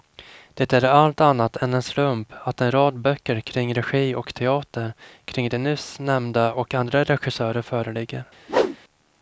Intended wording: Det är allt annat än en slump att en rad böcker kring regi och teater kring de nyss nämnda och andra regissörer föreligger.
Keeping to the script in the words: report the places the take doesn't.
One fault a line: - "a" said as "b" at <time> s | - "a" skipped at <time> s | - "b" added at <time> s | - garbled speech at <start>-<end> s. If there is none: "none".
none